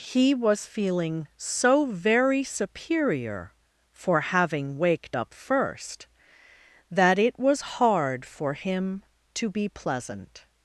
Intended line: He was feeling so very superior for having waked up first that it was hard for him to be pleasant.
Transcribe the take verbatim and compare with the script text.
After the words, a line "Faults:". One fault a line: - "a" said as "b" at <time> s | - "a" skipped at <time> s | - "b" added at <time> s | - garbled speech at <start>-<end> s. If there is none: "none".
He was feeling so very superior for having waked up first that it was hard for him to be pleasant.
Faults:
none